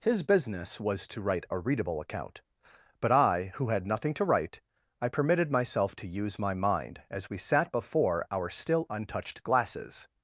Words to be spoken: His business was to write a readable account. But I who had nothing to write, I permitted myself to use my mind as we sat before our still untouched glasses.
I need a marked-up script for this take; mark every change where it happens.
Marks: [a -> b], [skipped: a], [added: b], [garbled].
His business was to write a readable account. But I who had nothing to write, I permitted myself to use my mind as we sat before our still untouched glasses.